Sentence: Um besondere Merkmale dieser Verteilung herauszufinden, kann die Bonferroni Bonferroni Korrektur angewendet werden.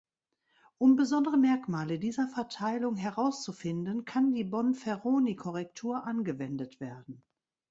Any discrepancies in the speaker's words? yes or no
yes